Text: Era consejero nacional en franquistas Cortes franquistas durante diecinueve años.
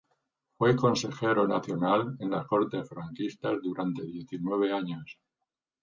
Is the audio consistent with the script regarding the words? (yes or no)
no